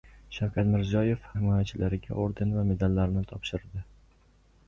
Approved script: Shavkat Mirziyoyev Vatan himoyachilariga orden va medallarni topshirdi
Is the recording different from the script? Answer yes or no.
yes